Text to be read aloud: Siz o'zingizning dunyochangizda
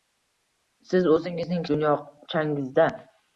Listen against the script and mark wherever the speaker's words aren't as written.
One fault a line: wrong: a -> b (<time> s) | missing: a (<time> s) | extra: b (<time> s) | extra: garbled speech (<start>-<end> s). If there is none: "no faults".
no faults